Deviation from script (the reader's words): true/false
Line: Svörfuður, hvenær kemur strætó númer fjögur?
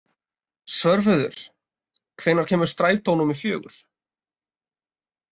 false